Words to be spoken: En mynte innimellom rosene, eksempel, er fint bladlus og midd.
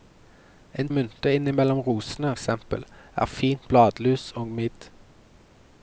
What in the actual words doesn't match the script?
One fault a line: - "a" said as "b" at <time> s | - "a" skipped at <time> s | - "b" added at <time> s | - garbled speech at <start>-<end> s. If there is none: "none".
none